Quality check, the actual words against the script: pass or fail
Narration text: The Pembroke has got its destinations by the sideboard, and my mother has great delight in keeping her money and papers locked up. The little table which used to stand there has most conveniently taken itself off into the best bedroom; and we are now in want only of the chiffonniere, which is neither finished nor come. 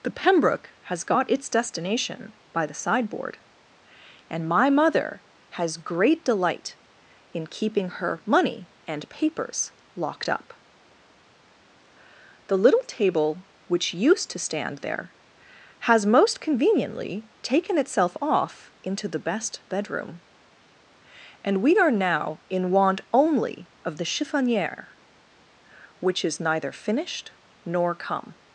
fail